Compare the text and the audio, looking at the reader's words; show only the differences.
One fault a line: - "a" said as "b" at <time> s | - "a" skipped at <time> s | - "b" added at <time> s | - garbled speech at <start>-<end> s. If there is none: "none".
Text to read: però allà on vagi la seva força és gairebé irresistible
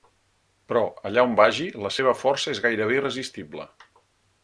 none